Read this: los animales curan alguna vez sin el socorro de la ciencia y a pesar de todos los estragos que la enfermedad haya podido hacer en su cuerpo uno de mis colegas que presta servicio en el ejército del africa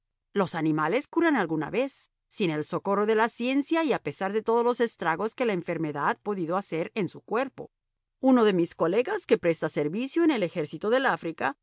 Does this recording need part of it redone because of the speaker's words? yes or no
yes